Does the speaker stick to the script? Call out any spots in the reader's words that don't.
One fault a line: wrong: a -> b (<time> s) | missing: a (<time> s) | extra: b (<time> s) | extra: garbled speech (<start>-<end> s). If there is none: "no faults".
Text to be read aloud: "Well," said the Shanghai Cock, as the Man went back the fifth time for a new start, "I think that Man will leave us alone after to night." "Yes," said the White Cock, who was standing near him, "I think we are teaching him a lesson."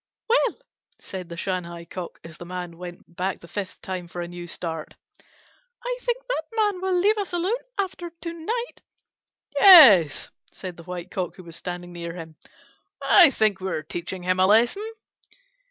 no faults